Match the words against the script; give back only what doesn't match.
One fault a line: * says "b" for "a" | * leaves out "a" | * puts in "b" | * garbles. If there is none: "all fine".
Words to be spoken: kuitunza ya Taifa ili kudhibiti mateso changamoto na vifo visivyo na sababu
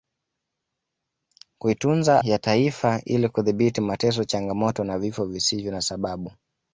all fine